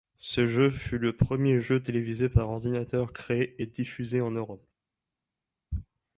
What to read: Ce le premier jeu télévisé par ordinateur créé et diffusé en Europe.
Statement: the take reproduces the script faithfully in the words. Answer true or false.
false